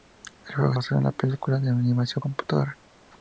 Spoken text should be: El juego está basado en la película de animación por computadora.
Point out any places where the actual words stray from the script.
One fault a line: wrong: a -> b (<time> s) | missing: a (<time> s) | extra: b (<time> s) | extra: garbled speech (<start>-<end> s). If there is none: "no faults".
missing: está (0.7 s)
missing: por (2.2 s)